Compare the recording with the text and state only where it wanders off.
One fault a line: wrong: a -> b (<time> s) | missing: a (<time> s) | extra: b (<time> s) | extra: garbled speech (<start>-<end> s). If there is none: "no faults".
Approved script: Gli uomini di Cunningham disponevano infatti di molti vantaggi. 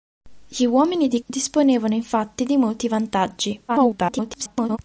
missing: Cunningham (1.2 s)
extra: garbled speech (3.7-4.8 s)